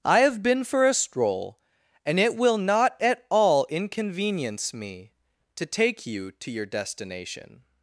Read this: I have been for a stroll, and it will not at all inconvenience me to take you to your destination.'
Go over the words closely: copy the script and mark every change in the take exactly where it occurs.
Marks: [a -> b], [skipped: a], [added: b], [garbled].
I have been for a stroll, and it will not at all inconvenience me to take you to your destination.'